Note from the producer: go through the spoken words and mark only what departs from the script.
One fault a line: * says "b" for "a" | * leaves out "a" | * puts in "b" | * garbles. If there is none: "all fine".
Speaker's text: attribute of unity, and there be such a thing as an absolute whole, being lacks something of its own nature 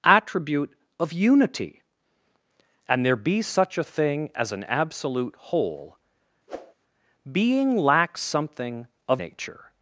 * leaves out "its own"